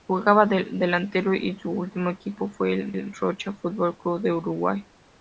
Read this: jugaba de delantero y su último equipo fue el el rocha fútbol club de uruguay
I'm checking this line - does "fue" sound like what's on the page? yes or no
yes